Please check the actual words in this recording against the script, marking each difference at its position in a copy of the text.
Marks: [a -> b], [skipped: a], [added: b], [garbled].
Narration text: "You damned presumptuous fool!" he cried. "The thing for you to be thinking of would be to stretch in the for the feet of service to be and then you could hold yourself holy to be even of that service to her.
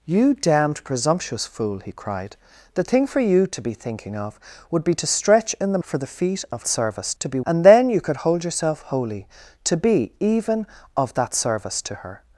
"You damned presumptuous fool!" he cried. "The thing for you to be thinking of would be to stretch in the for the feet of service to be and then you could hold yourself holy to be even of that service to her.